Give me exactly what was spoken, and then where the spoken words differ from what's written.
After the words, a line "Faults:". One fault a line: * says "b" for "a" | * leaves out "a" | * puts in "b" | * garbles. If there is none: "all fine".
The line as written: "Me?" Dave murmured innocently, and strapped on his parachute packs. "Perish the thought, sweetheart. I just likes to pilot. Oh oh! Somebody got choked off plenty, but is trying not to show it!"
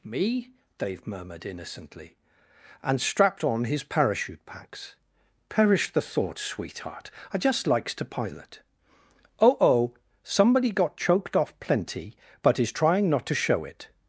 "Me?" Dave murmured innocently, and strapped on his parachute packs. "Perish the thought, sweetheart. I just likes to pilot. Oh oh! Somebody got choked off plenty, but is trying not to show it!"
Faults:
all fine